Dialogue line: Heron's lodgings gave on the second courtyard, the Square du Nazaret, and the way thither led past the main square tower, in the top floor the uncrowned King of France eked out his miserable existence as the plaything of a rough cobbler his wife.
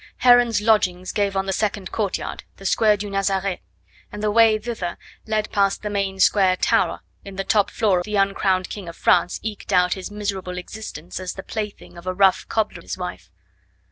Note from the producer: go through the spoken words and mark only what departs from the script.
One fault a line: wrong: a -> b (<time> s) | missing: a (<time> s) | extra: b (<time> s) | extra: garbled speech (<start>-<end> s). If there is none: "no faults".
no faults